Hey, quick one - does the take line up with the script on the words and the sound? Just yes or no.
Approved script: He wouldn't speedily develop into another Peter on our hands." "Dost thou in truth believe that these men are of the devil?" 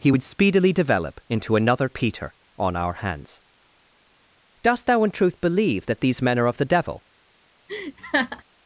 no